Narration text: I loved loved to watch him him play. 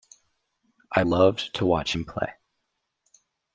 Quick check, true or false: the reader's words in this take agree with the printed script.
false